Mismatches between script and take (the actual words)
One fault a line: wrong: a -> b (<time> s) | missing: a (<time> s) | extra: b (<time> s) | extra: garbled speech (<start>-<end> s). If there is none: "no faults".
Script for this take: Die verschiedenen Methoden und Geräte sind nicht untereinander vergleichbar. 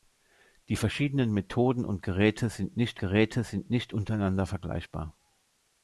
extra: Geräte sind nicht (3.0 s)